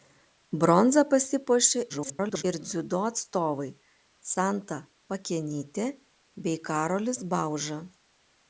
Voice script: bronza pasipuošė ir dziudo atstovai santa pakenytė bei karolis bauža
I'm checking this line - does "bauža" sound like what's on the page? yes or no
yes